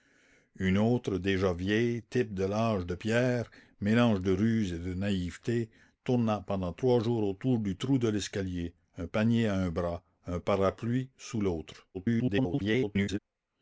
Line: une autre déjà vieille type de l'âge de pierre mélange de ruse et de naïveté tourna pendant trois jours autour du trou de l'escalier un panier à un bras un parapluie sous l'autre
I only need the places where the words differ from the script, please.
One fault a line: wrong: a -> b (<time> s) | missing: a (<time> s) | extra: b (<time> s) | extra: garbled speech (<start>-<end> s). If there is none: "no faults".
extra: garbled speech (11.9-13.2 s)